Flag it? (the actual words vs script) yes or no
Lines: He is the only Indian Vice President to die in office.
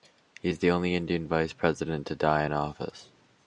no